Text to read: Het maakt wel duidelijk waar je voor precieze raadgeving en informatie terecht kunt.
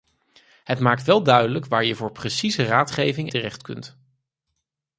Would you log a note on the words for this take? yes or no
yes